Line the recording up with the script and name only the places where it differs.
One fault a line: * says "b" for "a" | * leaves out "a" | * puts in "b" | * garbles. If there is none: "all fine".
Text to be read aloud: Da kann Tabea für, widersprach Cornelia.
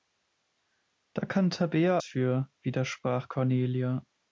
all fine